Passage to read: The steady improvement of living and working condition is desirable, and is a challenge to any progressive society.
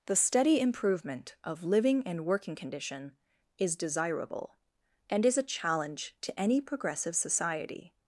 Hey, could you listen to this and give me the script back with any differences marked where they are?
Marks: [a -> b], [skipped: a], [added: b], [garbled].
The steady improvement of living and working condition is desirable, and is a challenge to any progressive society.